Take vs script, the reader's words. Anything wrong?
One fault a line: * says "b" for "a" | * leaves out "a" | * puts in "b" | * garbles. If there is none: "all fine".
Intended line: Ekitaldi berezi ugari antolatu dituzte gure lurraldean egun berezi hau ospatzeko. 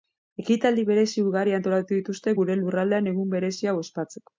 all fine